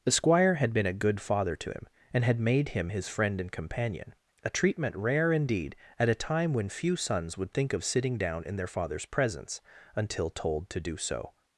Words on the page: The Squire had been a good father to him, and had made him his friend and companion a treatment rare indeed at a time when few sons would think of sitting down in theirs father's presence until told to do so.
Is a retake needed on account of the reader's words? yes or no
yes